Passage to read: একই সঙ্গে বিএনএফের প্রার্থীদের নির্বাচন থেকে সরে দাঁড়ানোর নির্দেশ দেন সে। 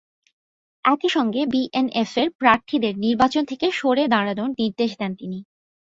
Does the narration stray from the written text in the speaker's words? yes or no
yes